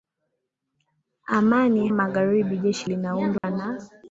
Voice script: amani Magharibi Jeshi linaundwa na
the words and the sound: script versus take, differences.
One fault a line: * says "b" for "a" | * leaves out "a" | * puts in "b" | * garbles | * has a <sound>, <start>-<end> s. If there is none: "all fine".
* has a dropout, 3.4-3.4 s